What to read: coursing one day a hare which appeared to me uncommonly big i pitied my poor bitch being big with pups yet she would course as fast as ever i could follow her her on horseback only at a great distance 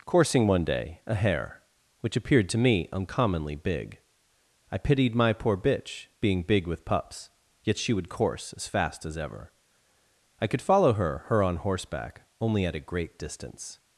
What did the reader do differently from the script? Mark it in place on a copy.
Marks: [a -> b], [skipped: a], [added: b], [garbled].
coursing one day a hare which appeared to me uncommonly big i pitied my poor bitch being big with pups yet she would course as fast as ever i could follow her her on horseback only at a great distance